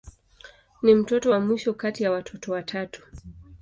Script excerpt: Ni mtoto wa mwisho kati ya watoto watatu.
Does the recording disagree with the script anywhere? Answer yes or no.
no